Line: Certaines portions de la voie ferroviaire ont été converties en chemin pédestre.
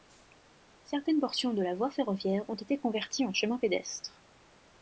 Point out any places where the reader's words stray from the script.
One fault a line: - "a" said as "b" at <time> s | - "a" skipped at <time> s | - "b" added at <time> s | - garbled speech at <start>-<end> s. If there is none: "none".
none